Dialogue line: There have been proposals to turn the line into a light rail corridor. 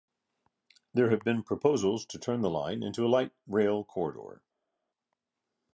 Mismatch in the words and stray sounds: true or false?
false